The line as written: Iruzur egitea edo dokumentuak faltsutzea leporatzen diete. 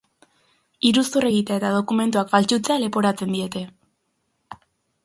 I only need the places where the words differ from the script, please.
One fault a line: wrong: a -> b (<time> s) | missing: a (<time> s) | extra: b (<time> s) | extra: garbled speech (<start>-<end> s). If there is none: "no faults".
wrong: edo -> eta (1.6 s)